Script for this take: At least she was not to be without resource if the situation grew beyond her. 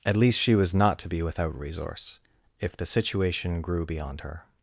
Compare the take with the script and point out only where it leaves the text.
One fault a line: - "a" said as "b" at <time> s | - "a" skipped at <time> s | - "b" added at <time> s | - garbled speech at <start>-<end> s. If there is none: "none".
none